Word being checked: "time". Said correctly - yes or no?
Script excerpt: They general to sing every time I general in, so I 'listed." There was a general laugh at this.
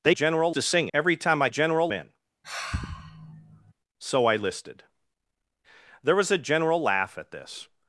yes